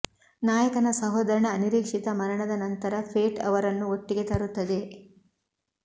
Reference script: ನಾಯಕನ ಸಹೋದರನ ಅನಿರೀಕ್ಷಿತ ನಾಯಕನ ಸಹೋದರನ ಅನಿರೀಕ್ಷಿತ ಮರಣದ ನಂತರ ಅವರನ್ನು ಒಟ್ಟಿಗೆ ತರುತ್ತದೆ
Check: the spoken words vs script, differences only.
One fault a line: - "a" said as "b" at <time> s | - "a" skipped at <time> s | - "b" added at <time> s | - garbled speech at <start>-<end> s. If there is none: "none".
- "ನಾಯಕನ ಸಹೋದರನ ಅನಿರೀಕ್ಷಿತ" skipped at 2.1 s
- "ಫೇಟ್" added at 3.1 s